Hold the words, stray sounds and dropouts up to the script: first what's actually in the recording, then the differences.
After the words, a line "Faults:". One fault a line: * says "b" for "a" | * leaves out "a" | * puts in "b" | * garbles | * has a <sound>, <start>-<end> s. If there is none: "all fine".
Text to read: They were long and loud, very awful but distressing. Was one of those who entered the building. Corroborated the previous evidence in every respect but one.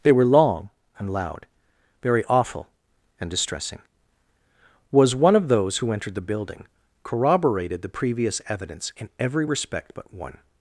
They were long and loud, very awful and distressing. Was one of those who entered the building. Corroborated the previous evidence in every respect but one.
Faults:
* says "and" for "but"